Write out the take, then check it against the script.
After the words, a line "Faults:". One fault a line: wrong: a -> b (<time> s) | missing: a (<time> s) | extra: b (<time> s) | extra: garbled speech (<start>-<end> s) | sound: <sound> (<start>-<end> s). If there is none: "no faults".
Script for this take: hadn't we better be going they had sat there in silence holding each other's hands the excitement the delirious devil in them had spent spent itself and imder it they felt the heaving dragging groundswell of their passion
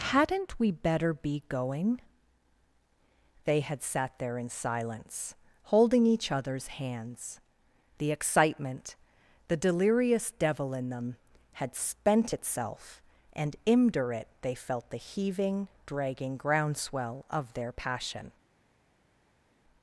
hadn't we better be going they had sat there in silence holding each other's hands the excitement the delirious devil in them had spent itself and imder it they felt the heaving dragging groundswell of their passion
Faults:
missing: spent (12.3 s)